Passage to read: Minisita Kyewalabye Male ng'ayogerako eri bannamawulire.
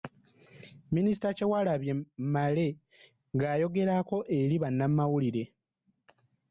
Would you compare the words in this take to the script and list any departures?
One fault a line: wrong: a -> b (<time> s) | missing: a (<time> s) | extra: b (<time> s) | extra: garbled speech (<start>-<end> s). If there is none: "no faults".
no faults